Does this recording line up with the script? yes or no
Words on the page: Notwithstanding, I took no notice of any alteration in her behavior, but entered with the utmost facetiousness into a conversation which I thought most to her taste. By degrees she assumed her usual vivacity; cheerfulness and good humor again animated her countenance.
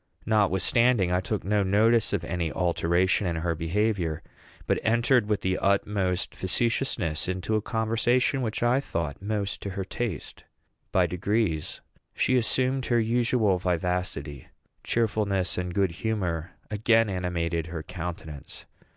yes